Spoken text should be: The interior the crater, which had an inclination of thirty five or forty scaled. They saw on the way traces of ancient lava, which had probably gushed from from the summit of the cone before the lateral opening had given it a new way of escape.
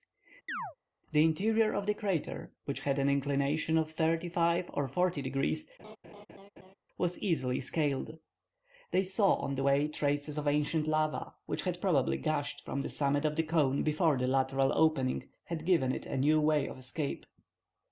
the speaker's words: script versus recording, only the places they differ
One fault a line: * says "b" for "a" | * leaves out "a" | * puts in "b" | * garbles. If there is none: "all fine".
* puts in "of"
* puts in "degrees was easily"
* leaves out "from"